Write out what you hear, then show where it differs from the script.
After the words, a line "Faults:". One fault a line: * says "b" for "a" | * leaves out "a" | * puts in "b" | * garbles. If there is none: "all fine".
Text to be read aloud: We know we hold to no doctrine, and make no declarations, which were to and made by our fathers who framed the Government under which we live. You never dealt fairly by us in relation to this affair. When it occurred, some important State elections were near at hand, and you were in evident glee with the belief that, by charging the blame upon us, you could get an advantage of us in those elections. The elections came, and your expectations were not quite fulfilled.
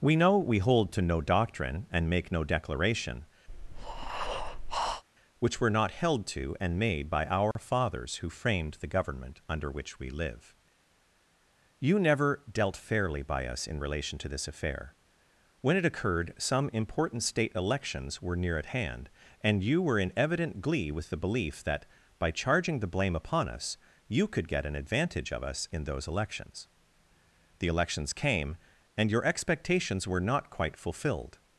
We know we hold to no doctrine, and make no declaration, which were not held to and made by our fathers who framed the Government under which we live. You never dealt fairly by us in relation to this affair. When it occurred, some important State elections were near at hand, and you were in evident glee with the belief that, by charging the blame upon us, you could get an advantage of us in those elections. The elections came, and your expectations were not quite fulfilled.
Faults:
* says "declaration" for "declarations"
* puts in "not held"